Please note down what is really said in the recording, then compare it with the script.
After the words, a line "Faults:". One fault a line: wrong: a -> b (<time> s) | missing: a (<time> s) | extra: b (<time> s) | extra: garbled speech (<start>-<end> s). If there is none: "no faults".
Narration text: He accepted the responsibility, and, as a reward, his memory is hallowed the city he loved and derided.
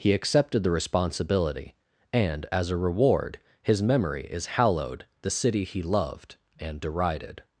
He accepted the responsibility, and, as a reward, his memory is hallowed the city he loved and derided.
Faults:
no faults